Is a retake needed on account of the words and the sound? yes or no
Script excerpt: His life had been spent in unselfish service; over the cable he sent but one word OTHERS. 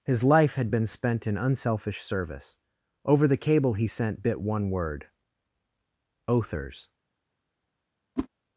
yes